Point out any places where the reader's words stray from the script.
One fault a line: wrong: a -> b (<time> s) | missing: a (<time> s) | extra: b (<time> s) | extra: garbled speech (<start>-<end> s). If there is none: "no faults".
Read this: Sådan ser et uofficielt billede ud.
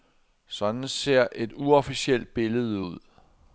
no faults